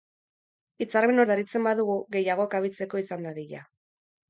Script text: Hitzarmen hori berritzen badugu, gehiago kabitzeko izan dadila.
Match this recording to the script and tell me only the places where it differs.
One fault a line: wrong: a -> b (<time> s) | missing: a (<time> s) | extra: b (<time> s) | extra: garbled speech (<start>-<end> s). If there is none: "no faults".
missing: hori (1.2 s)